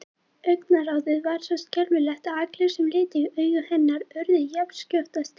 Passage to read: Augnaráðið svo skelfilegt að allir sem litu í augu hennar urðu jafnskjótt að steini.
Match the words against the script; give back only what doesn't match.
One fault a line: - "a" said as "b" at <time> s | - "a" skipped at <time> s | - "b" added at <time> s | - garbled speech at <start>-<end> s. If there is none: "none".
- "var" added at 1.2 s